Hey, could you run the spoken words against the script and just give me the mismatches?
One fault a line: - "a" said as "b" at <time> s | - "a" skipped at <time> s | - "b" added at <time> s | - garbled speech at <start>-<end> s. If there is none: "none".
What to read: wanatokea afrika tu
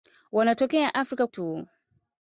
none